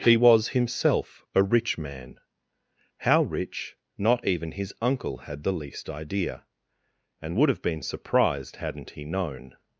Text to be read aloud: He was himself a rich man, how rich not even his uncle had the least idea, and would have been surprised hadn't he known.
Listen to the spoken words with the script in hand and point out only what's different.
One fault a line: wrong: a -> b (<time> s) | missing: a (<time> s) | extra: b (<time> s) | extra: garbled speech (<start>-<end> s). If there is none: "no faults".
no faults